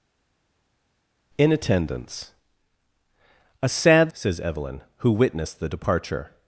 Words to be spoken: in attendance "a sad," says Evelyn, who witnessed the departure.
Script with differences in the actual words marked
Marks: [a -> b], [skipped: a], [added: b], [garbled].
in attendance "a sad," says Evelyn, who witnessed the departure.